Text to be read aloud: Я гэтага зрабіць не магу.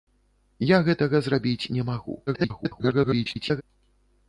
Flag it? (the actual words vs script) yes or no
yes